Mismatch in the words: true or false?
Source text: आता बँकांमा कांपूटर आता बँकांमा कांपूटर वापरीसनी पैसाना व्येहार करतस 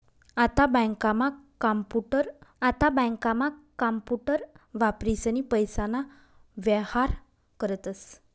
false